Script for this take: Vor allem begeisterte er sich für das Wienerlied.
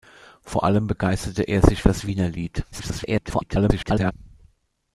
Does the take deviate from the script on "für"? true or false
true